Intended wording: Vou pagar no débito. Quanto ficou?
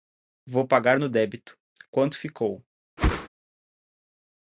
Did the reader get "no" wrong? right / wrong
right